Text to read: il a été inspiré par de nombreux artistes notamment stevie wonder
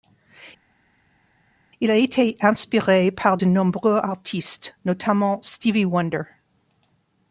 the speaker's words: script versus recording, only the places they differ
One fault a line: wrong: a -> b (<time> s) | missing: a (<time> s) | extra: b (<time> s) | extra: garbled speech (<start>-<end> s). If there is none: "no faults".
no faults